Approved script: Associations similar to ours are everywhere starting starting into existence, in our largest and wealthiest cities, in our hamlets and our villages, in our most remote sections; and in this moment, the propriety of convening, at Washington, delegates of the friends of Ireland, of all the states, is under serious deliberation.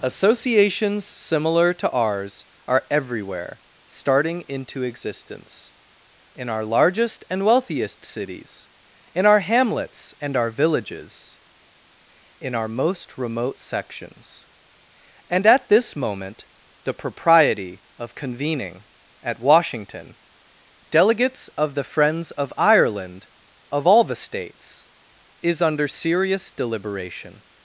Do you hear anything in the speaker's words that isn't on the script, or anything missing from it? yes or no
yes